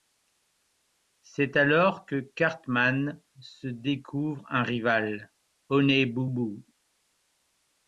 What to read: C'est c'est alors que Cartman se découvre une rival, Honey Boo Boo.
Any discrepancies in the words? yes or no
yes